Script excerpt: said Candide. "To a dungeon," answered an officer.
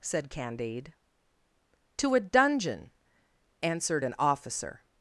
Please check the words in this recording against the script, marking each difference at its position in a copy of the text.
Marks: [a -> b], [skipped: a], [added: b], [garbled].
said Candide. "To a dungeon," answered an officer.